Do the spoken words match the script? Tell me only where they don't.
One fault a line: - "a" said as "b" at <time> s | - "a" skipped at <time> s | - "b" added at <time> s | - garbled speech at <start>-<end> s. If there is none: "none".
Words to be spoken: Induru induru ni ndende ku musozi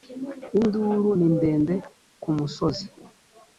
- "induru" skipped at 1.1 s